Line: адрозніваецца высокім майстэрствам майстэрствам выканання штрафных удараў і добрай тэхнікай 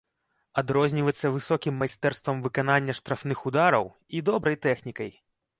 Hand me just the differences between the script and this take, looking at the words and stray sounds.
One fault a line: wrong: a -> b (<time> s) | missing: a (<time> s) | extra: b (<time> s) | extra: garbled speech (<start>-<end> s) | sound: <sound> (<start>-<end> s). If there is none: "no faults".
missing: майстэрствам (2.4 s)